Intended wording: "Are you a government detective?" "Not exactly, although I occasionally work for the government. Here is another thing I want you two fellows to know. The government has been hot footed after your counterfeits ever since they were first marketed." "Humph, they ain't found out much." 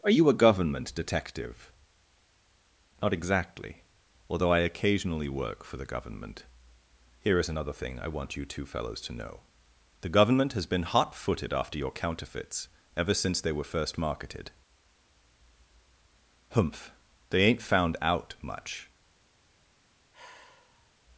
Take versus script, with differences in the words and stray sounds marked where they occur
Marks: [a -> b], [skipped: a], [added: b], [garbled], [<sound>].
"Are you a government detective?" "Not exactly, although I occasionally work for the government. Here is another thing I want you two fellows to know. The government has been hot footed after your counterfeits ever since they were first marketed." "Humph, they ain't found out much." [sigh]